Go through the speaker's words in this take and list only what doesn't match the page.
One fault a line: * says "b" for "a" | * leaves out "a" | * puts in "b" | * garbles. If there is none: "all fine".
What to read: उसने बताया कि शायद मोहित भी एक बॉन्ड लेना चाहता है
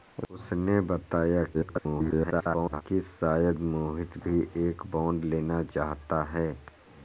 * garbles